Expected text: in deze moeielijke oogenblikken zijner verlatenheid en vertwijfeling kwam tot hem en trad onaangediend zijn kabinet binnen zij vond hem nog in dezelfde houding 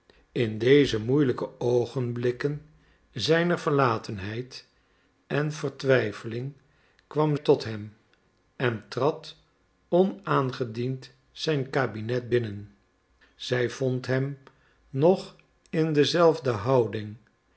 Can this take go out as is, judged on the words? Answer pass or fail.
pass